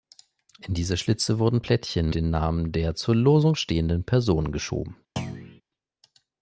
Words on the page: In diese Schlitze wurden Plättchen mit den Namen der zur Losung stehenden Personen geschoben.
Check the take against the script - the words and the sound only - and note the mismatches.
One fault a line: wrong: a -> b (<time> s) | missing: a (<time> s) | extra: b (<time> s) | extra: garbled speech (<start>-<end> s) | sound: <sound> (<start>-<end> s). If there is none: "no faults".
missing: mit (2.1 s)
sound: thud (5.2-5.6 s)